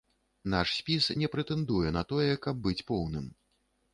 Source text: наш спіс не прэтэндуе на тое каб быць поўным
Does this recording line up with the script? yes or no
yes